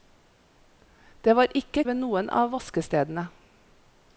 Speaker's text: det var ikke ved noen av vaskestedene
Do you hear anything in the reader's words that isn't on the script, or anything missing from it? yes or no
no